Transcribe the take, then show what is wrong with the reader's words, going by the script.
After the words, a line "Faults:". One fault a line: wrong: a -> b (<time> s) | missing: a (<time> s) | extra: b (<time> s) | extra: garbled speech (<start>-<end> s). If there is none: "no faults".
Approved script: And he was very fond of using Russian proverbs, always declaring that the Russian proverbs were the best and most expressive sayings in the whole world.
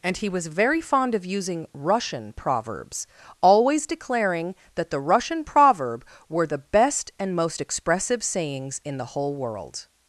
And he was very fond of using Russian proverbs, always declaring that the Russian proverb were the best and most expressive sayings in the whole world.
Faults:
wrong: proverbs -> proverb (5.4 s)